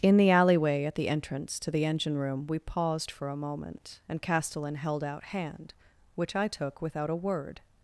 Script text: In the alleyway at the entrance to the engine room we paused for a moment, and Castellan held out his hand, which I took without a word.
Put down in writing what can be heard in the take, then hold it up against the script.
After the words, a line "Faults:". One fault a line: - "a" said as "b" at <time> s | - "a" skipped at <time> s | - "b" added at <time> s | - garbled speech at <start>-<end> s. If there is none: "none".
In the alleyway at the entrance to the engine room we paused for a moment, and Castellan held out hand, which I took without a word.
Faults:
- "his" skipped at 5.2 s